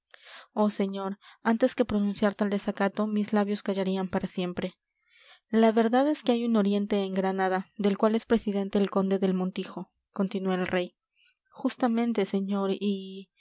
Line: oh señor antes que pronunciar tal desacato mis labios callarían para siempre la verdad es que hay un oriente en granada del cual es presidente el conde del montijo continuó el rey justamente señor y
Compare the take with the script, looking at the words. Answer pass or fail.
pass